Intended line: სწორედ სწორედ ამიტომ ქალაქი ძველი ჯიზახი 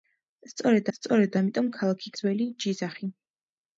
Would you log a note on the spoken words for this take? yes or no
no